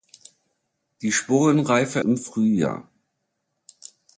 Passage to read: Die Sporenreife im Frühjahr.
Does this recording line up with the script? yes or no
yes